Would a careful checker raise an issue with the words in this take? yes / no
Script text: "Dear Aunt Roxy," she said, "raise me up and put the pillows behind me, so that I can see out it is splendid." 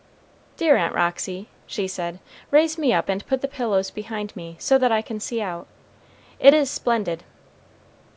no